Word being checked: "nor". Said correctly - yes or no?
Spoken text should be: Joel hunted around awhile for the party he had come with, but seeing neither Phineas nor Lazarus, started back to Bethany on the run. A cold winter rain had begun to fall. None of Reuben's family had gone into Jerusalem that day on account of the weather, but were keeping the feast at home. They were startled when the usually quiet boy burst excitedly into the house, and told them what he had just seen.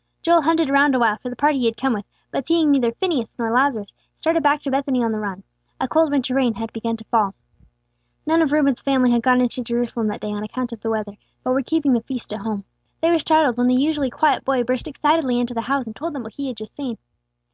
yes